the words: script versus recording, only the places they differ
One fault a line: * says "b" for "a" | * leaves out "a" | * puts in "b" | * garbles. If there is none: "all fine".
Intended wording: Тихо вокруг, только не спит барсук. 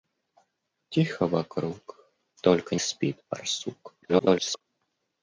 * leaves out "не"
* garbles